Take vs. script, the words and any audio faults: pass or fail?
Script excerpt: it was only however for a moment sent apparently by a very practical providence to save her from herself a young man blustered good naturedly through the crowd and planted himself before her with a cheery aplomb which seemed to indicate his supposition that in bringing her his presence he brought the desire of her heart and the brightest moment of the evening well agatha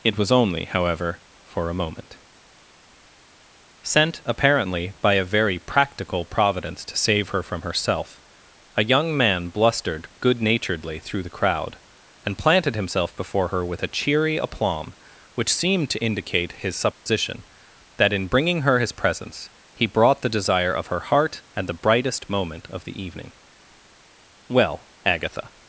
fail